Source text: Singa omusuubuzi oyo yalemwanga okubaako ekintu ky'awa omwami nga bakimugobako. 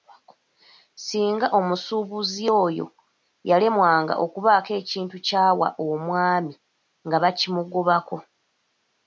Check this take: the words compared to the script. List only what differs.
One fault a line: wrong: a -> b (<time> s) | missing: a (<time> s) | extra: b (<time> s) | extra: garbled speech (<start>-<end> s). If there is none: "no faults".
no faults